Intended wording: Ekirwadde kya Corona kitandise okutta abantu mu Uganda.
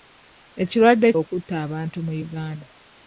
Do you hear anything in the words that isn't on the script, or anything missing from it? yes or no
yes